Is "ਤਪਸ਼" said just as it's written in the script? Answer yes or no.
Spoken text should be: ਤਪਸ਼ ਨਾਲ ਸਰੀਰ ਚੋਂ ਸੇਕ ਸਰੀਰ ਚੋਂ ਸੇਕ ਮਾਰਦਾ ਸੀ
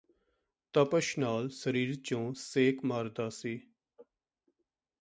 yes